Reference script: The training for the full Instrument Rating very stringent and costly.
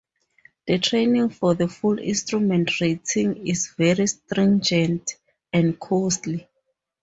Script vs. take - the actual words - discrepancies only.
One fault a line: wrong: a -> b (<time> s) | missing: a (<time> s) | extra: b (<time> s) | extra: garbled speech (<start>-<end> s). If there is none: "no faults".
extra: is (3.5 s)